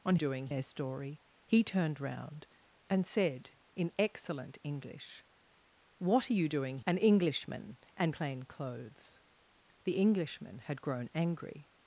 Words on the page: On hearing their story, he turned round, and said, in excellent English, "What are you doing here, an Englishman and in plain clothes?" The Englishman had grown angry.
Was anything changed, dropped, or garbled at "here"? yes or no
yes